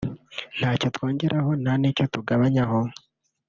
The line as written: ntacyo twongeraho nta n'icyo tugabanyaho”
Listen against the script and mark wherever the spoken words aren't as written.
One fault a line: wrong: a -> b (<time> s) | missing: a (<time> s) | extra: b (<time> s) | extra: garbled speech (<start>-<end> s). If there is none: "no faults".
no faults